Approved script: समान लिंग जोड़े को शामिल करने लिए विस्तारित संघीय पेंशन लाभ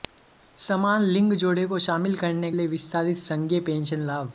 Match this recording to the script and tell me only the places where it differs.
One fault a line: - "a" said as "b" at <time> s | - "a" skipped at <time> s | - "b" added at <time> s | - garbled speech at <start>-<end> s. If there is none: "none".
none